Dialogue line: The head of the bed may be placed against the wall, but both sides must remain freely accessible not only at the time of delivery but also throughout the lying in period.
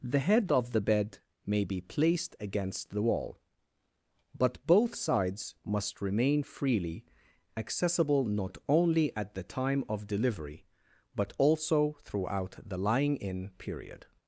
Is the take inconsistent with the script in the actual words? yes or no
no